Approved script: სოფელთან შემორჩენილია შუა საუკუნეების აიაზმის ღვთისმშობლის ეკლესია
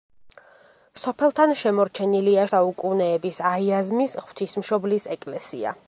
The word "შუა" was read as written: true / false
false